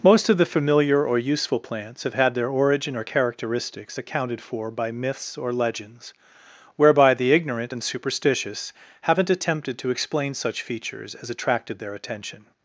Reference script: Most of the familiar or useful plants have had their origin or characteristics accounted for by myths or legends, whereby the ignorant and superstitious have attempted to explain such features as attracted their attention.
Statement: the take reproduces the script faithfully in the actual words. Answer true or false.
false